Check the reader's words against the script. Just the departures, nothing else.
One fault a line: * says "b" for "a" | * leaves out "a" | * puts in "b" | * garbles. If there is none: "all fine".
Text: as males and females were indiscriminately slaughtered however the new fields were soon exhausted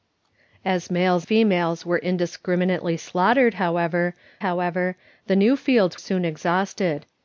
* leaves out "and"
* puts in "however"
* leaves out "were"